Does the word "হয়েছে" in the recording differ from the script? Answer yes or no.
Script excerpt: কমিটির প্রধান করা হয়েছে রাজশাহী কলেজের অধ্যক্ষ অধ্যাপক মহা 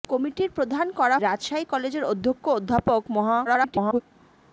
yes